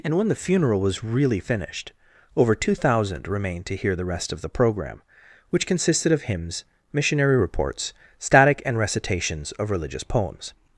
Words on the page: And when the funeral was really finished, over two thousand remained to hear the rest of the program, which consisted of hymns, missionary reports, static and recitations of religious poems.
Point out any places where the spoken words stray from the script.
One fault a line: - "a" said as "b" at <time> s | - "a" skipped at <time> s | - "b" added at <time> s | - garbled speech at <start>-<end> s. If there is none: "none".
none